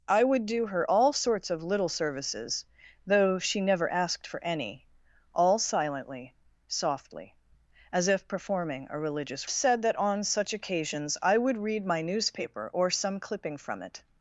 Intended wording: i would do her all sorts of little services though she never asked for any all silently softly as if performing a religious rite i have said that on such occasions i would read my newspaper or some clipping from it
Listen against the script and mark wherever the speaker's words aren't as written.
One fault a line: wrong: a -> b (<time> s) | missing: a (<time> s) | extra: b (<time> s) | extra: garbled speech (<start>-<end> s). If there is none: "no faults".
missing: rite i have (9.5 s)